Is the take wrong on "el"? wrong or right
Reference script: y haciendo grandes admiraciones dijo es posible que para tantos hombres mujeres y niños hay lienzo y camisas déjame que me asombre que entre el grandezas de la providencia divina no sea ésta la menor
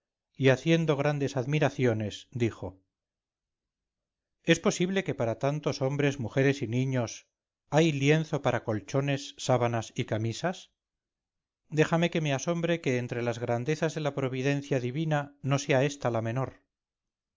wrong